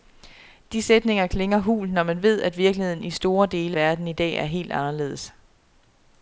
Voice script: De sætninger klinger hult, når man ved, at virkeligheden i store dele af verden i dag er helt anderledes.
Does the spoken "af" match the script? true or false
false